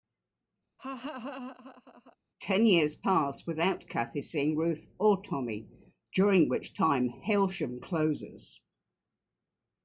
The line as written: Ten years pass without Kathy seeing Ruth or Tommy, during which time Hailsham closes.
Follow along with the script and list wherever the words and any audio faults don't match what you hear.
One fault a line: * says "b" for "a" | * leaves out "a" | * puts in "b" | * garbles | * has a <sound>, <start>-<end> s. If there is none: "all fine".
* has a laugh, 0.8-2.2 s